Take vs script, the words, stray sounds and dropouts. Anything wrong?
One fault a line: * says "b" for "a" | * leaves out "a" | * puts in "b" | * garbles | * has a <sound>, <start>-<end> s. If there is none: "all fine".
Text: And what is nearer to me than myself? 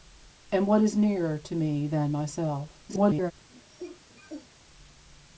* garbles
* has a cough, 3.5-4.5 s